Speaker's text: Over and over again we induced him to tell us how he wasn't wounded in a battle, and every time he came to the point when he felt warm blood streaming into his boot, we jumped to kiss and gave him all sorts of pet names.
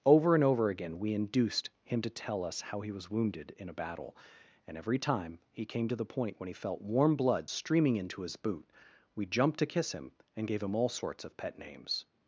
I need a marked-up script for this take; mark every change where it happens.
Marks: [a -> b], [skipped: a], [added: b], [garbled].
Over and over again we induced him to tell us how he [wasn't -> was] wounded in a battle, and every time he came to the point when he felt warm blood streaming into his boot, we jumped to kiss [added: him] and gave him all sorts of pet names.